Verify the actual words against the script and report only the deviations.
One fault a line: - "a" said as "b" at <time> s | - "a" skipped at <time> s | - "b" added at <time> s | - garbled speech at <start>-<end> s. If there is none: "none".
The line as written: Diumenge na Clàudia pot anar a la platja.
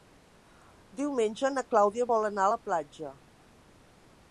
- "pot" said as "vol" at 2.1 s